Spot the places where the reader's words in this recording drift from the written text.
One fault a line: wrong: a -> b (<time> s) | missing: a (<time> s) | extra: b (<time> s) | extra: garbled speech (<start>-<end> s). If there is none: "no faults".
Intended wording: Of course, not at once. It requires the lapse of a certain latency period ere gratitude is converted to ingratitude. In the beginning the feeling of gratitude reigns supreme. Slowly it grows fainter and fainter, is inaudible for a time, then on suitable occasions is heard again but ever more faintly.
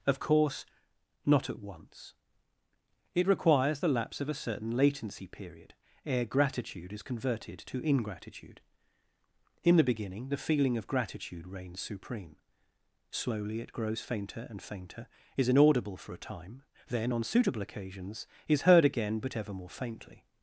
no faults